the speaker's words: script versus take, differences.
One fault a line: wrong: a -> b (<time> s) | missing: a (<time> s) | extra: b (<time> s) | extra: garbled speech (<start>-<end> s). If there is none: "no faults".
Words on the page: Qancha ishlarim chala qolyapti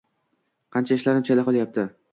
no faults